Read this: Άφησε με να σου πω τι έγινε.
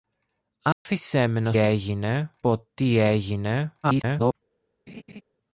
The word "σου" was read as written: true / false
false